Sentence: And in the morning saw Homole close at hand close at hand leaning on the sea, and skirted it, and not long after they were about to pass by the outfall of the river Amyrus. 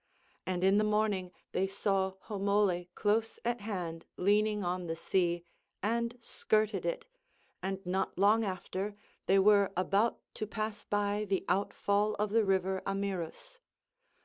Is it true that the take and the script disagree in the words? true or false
true